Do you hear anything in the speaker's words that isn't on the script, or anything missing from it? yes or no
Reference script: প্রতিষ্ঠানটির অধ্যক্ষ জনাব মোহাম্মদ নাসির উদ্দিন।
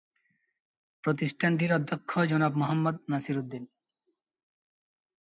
no